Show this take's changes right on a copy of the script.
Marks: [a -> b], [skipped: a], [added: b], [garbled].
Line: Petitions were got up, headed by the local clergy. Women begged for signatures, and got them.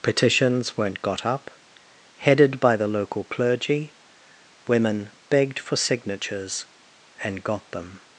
Petitions [were -> weren't] got up, headed by the local clergy. Women begged for signatures, and got them.